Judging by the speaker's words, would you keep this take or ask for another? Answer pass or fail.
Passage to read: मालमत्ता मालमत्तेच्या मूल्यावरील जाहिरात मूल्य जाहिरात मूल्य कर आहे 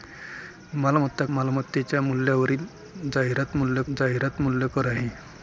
pass